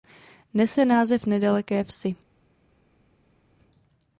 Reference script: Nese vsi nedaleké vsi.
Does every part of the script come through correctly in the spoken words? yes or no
no